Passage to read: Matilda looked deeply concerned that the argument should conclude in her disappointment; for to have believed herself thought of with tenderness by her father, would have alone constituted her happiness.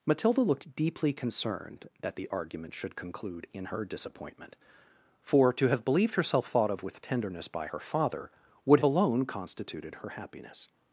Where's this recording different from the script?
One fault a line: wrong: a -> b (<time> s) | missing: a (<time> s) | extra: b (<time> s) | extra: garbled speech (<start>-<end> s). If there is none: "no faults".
missing: have (8.8 s)